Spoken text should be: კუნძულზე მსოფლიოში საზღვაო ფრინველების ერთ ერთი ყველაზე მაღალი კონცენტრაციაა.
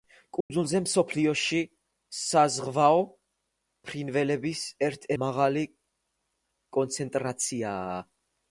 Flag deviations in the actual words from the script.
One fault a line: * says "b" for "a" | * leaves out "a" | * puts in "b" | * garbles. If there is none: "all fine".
* leaves out "ერთი ყველაზე"